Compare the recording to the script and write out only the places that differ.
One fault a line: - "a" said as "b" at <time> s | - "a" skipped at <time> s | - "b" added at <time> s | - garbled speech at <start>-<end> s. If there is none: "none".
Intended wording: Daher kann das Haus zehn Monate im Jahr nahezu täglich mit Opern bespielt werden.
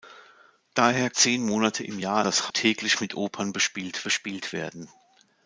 - "kann das Haus" skipped at 1.1 s
- "nahezu" said as "das" at 2.2 s
- "bespielt" added at 4.0 s